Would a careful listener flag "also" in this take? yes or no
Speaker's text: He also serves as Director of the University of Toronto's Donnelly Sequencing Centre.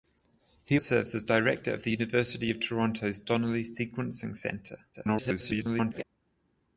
yes